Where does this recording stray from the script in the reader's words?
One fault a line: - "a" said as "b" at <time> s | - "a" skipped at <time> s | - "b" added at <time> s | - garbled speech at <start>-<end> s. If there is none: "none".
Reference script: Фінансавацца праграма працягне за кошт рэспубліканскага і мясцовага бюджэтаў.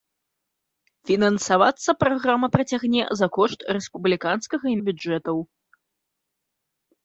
- "мясцовага" skipped at 4.8 s